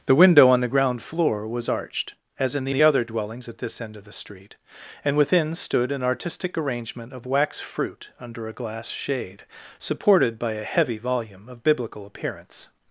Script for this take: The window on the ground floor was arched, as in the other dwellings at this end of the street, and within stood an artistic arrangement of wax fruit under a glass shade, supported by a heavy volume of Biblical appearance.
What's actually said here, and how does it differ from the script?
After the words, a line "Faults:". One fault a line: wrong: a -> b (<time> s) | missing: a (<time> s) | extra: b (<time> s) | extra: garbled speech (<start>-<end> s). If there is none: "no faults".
The window on the ground floor was arched, as in the the other dwellings at this end of the street, and within stood an artistic arrangement of wax fruit under a glass shade, supported by a heavy volume of Biblical appearance.
Faults:
extra: the (2.7 s)